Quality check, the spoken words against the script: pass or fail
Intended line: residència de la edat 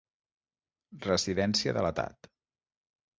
pass